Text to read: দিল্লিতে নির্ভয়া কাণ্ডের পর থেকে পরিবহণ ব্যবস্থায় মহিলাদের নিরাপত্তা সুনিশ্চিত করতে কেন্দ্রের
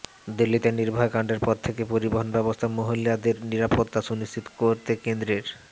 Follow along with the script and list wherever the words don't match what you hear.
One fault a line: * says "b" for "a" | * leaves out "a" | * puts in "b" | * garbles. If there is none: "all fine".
all fine